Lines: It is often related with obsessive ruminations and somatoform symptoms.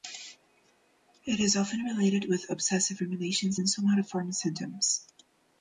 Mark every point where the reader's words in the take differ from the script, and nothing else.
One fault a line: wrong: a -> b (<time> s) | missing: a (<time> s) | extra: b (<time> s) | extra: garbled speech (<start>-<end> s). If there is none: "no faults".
no faults